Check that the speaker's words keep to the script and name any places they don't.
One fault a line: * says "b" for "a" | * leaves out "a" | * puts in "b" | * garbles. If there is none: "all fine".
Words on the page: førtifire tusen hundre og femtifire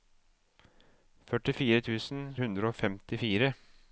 all fine